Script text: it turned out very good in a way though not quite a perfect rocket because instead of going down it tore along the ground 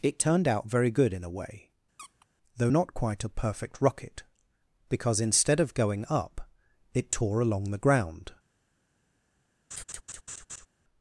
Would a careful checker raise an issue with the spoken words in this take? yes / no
yes